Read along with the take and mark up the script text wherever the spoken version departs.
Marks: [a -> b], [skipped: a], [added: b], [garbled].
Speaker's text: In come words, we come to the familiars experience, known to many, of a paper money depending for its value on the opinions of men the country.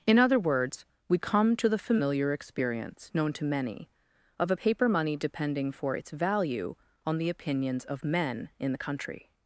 In [come -> other] words, we come to the [familiars -> familiar] experience, known to many, of a paper money depending for its value on the opinions of men [added: in] the country.